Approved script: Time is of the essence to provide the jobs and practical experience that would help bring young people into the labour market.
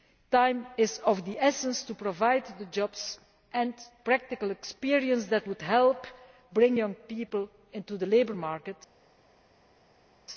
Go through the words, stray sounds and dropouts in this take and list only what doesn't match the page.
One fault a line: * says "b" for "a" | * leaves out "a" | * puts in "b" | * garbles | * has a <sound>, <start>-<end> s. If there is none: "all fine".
all fine